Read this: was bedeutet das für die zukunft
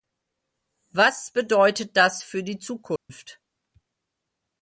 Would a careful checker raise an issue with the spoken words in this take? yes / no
no